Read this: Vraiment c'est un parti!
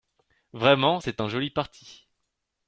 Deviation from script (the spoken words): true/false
true